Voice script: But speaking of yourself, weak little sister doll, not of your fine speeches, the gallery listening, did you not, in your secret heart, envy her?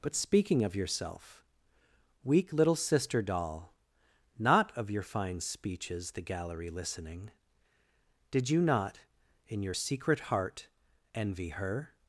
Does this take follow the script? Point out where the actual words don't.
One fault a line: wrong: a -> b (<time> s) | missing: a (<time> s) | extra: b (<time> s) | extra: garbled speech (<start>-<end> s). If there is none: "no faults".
no faults